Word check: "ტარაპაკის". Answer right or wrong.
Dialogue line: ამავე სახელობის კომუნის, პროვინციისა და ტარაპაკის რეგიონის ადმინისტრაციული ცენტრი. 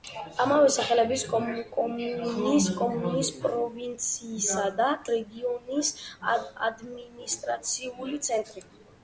wrong